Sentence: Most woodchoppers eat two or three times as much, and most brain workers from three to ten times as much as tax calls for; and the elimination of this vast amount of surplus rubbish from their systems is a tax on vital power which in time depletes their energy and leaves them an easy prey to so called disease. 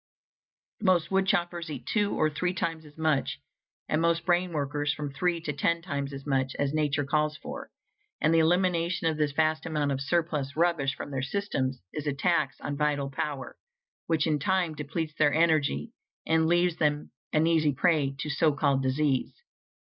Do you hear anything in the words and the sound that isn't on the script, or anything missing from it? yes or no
yes